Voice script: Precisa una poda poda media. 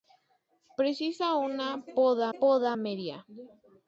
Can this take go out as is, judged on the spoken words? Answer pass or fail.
pass